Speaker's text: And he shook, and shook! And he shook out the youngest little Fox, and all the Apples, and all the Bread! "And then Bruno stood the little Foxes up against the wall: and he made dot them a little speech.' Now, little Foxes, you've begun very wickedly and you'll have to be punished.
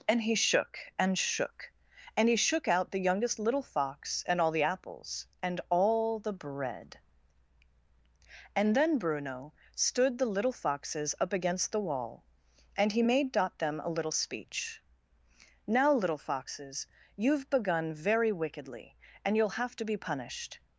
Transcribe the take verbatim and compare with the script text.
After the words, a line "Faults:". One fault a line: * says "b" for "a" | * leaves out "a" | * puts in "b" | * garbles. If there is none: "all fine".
And he shook, and shook! And he shook out the youngest little Fox, and all the Apples, and all the Bread! "And then Bruno stood the little Foxes up against the wall: and he made dot them a little speech.' Now, little Foxes, you've begun very wickedly and you'll have to be punished.
Faults:
all fine